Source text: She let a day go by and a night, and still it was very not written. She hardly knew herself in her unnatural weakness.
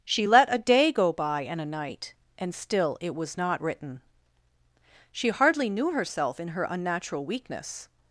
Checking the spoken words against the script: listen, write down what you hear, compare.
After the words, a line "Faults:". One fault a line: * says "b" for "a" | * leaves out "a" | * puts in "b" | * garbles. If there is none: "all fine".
She let a day go by and a night, and still it was not written. She hardly knew herself in her unnatural weakness.
Faults:
* leaves out "very"